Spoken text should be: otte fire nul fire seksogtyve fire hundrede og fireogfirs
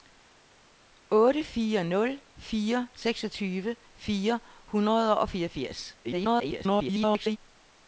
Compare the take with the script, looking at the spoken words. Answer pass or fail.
fail